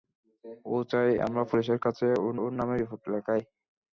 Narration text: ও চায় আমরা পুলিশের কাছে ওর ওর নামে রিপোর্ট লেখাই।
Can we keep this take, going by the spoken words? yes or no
yes